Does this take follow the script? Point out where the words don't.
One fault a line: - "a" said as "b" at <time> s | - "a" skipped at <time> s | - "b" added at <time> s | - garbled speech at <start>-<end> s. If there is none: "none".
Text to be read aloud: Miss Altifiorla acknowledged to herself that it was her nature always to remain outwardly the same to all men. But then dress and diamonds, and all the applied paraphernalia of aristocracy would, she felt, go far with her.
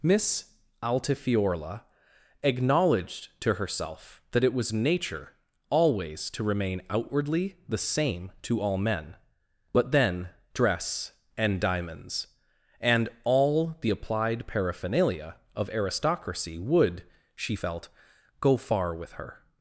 - "her" skipped at 4.7 s